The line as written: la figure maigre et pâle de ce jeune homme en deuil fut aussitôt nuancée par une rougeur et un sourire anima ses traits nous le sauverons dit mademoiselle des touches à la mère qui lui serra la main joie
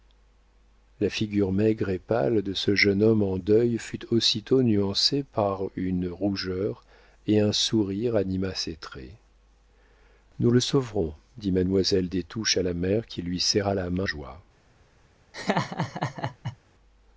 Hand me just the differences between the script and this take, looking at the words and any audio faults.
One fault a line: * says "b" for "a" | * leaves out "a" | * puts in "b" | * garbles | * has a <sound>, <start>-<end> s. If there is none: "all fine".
* has a laugh, 15.3-16.6 s